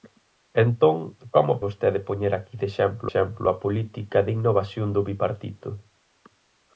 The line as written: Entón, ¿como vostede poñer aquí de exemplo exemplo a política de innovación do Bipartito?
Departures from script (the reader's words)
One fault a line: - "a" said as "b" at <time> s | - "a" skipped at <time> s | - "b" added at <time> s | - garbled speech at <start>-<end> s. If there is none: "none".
none